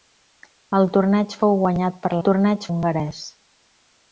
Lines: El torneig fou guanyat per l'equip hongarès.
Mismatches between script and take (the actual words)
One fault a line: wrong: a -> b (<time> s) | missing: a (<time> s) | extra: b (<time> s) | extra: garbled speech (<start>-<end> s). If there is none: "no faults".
wrong: l'equip -> torneig (2.3 s)